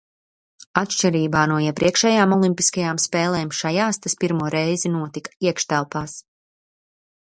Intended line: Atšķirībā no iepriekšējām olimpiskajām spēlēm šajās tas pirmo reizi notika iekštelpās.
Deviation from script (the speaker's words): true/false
false